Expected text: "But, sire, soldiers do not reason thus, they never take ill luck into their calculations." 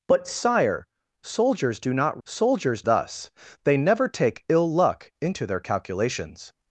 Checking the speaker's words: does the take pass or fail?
fail